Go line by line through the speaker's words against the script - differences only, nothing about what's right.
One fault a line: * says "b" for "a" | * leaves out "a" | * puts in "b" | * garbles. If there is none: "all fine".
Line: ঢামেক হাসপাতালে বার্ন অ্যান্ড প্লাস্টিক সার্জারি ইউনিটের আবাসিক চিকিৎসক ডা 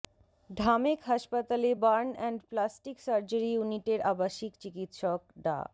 all fine